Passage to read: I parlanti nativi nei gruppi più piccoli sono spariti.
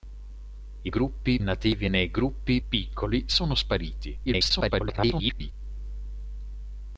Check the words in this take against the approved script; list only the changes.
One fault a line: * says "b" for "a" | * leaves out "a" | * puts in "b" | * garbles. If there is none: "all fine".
* says "gruppi" for "parlanti"
* leaves out "più"
* garbles